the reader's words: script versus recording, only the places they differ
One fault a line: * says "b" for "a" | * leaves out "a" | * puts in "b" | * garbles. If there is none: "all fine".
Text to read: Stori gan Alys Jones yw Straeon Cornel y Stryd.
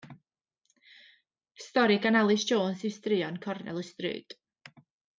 all fine